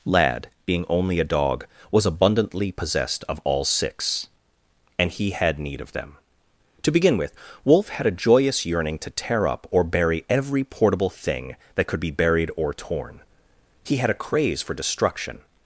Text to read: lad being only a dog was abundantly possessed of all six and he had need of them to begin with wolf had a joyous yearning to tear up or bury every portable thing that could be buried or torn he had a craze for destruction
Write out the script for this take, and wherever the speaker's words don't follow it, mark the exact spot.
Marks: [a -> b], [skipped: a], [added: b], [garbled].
lad being only a dog was abundantly possessed of all six and he had need of them to begin with wolf had a joyous yearning to tear up or bury every portable thing that could be buried or torn he had a craze for destruction